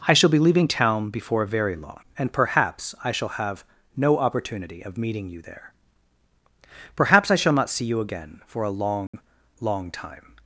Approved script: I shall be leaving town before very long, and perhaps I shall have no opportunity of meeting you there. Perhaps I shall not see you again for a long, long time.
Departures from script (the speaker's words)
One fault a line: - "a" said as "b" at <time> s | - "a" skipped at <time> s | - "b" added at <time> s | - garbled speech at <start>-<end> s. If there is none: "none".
none